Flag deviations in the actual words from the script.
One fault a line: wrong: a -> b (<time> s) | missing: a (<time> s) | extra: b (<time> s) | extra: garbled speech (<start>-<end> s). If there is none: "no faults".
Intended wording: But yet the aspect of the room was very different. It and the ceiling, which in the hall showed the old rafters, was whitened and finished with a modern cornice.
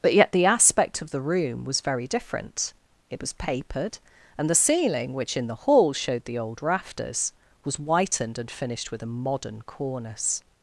extra: was papered (3.2 s)